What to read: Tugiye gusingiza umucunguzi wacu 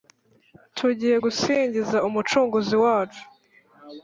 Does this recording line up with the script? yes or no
yes